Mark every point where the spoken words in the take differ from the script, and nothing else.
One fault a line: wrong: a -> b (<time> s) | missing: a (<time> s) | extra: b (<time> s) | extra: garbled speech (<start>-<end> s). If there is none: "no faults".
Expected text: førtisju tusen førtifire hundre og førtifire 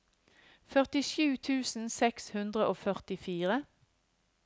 wrong: førtifire -> seks (2.0 s)